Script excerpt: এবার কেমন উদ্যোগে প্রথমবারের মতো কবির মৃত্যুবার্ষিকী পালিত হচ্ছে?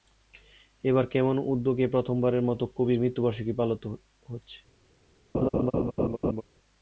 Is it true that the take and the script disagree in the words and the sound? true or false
true